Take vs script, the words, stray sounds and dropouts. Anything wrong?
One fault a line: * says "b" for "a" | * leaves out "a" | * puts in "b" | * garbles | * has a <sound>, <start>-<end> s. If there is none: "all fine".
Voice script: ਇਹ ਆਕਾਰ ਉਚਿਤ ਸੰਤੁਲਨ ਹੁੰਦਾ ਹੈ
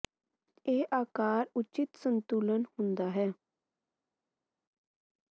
all fine